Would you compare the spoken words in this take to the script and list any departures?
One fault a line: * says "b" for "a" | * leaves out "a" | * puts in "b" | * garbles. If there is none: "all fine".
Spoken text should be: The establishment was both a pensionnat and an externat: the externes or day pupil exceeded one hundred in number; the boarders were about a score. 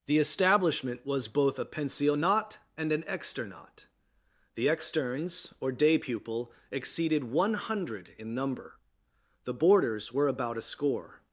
all fine